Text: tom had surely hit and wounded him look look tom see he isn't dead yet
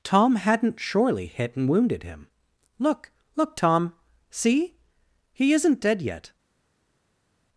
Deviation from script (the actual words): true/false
true